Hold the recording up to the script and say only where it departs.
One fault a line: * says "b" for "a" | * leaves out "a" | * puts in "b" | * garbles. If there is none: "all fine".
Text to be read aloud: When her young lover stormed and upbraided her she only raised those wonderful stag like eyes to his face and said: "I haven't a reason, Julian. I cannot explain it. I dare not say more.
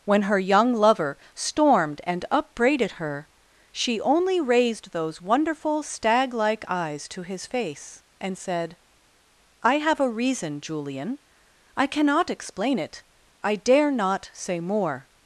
* says "have" for "haven't"